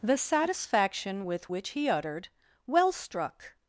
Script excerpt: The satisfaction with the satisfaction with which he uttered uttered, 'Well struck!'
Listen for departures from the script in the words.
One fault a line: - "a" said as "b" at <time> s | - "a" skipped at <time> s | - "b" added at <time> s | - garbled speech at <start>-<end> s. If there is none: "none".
- "the satisfaction with" skipped at 1.5 s
- "uttered" skipped at 2.3 s